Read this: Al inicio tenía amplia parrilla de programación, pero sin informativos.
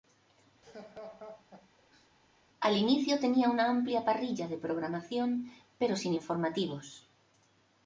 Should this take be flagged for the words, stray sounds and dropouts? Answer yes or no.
yes